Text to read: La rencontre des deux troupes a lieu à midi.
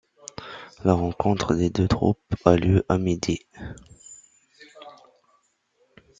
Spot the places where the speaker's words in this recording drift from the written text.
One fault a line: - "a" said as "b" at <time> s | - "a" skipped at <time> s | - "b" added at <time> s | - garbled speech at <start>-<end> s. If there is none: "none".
none